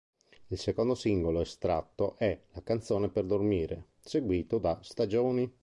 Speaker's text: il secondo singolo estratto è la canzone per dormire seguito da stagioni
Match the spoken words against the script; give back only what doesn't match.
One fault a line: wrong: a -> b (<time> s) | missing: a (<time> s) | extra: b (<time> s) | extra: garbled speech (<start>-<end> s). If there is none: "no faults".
no faults